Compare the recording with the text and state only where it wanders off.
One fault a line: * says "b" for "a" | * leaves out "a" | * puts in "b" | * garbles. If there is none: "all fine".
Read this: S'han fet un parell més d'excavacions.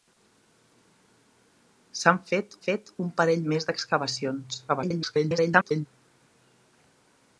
* puts in "fet"
* garbles